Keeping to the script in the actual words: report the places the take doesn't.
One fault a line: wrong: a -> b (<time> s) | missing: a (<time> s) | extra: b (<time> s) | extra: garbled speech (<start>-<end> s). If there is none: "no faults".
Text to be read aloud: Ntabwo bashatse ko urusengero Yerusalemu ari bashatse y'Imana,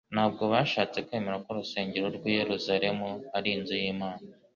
extra: kwemera (1.0 s)
extra: rw'i (2.2 s)
wrong: bashatse -> inzu (3.6 s)